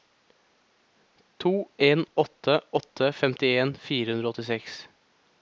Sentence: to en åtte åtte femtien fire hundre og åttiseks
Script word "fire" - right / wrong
right